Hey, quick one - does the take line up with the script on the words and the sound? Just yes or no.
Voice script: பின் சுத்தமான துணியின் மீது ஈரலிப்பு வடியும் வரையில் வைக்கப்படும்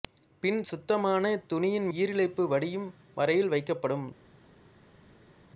no